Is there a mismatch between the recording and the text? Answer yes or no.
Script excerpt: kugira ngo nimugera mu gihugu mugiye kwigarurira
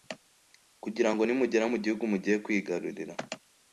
no